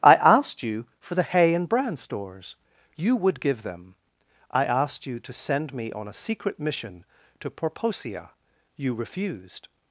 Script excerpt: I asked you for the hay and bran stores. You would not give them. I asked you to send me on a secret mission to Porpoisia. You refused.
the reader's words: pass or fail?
fail